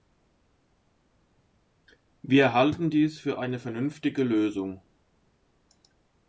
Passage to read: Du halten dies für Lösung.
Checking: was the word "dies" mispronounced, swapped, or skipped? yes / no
no